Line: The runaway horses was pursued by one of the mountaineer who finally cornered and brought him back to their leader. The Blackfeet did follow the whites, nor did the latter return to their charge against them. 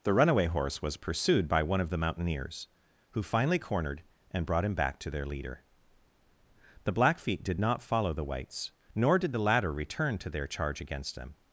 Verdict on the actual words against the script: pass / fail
fail